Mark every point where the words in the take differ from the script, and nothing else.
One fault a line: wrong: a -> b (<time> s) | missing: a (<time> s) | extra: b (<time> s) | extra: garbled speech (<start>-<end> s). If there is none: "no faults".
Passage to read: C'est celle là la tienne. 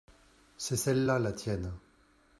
no faults